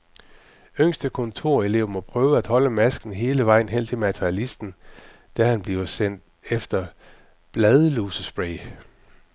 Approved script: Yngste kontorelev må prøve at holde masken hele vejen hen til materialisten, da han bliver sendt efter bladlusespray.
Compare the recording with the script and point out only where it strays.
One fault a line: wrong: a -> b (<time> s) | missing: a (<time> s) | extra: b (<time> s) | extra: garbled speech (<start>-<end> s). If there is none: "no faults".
no faults